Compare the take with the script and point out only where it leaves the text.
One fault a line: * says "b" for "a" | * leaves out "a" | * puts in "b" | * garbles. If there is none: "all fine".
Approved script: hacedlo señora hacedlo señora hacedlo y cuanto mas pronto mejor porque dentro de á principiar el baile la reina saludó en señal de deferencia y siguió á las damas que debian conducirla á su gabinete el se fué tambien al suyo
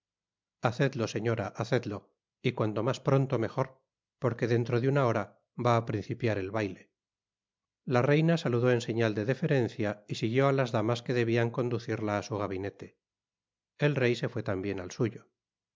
* leaves out "señora hacedlo"
* puts in "una hora va"
* puts in "rey"